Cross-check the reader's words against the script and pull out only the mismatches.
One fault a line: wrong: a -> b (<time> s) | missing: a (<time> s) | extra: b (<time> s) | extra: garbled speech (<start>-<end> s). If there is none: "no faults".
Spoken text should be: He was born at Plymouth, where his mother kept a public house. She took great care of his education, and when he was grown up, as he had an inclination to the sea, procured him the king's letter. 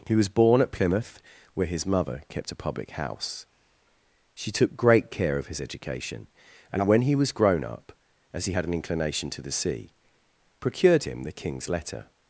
no faults